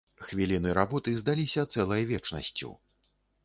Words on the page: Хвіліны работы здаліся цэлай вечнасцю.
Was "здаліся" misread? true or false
false